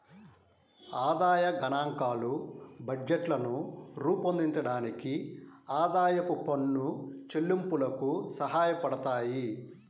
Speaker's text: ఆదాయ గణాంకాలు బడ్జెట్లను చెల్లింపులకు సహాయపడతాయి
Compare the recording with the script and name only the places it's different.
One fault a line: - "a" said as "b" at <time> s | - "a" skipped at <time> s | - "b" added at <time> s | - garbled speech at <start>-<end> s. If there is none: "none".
- "రూపొందించడానికి ఆదాయపు పన్ను" added at 4.0 s